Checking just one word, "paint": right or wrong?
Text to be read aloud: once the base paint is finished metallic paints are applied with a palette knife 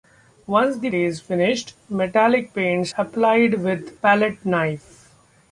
wrong